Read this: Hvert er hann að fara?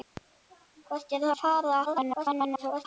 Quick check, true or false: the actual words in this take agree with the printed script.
false